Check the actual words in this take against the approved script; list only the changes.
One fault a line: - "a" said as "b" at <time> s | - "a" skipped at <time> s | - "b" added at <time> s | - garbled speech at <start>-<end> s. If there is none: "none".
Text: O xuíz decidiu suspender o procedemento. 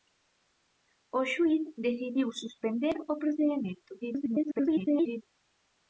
- garbled speech at 4.0-5.2 s